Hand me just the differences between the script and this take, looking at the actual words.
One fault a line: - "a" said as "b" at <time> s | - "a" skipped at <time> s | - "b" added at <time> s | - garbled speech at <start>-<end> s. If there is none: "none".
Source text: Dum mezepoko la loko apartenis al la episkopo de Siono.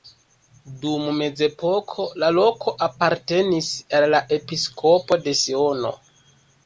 none